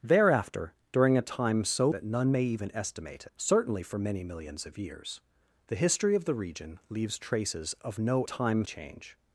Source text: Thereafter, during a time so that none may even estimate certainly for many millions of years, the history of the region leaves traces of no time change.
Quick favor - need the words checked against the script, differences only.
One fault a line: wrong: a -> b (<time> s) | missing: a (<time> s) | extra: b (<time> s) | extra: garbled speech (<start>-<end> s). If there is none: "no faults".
no faults